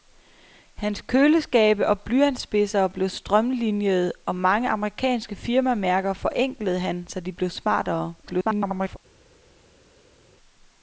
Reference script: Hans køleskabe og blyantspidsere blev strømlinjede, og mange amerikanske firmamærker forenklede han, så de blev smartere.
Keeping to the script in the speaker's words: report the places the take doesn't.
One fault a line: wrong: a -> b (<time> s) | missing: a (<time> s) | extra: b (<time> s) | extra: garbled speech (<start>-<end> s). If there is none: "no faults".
extra: garbled speech (8.2-9.0 s)